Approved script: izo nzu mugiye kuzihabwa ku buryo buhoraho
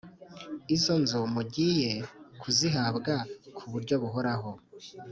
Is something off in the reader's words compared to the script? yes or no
no